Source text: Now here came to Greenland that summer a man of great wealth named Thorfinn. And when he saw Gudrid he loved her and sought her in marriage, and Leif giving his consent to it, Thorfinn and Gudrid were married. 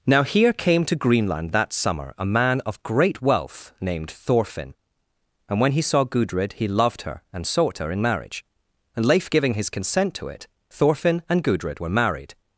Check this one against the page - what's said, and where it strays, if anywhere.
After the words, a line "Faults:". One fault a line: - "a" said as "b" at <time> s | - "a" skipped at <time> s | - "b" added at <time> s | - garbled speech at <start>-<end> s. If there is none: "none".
Now here came to Greenland that summer a man of great wealth named Thorfinn. And when he saw Gudrid he loved her and sought her in marriage, and Leif giving his consent to it, Thorfinn and Gudrid were married.
Faults:
none